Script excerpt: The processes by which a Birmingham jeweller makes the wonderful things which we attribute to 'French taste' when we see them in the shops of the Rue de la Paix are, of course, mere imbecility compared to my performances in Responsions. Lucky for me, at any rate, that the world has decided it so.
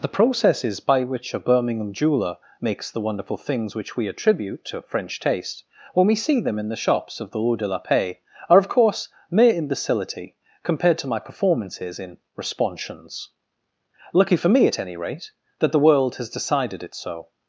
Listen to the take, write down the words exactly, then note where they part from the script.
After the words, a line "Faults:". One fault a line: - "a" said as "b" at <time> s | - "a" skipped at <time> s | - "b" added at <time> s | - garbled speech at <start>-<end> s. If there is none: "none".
The processes by which a Birmingham jeweller makes the wonderful things which we attribute to 'French taste' when we see them in the shops of the Rue de la Paix are, of course, mere imbecility compared to my performances in Responsions. Lucky for me, at any rate, that the world has decided it so.
Faults:
none